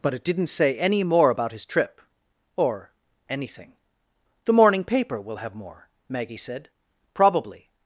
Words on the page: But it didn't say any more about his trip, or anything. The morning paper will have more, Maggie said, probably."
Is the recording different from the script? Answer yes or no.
no